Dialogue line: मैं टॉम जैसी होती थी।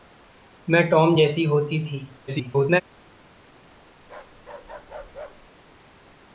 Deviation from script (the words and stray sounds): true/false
true